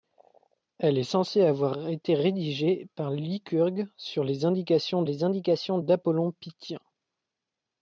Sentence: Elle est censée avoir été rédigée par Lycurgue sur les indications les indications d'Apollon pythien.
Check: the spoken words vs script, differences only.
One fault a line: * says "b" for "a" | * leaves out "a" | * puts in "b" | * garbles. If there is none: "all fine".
all fine